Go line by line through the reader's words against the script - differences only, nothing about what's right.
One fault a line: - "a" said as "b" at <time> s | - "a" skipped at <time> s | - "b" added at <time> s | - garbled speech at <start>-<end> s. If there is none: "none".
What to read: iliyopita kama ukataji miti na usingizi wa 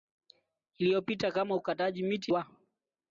- "na usingizi" skipped at 2.3 s